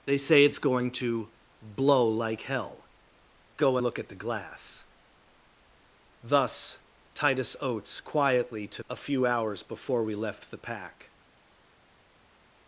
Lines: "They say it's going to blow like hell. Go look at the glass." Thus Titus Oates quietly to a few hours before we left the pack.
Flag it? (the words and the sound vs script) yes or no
no